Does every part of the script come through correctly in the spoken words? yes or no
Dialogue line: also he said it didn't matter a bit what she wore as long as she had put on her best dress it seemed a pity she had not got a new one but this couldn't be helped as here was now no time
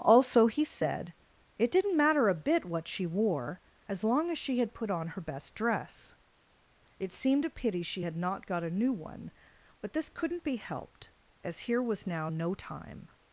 yes